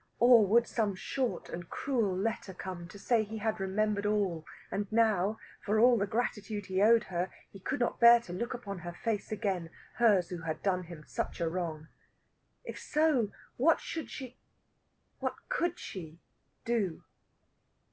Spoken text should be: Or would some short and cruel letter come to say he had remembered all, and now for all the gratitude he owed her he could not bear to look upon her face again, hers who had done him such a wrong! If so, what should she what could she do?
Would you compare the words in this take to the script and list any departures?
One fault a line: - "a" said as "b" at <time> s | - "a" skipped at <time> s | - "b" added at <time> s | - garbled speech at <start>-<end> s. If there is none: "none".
none